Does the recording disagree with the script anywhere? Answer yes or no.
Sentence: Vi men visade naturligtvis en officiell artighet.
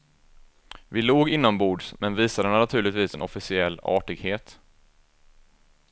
yes